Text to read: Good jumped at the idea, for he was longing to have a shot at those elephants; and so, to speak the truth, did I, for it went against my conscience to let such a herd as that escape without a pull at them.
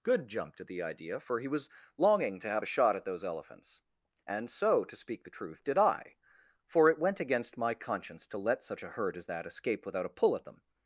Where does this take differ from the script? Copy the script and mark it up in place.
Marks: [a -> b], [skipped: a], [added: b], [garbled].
Good jumped at the idea, for he was longing to have a shot at those elephants; and so, to speak the truth, did I, for it went against my conscience to let such a herd as that escape without a pull at them.